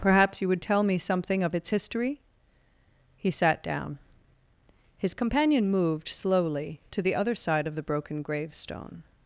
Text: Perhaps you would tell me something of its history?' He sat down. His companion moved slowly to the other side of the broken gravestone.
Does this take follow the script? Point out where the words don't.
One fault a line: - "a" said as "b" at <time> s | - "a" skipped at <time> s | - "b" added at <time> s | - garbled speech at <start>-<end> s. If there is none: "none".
none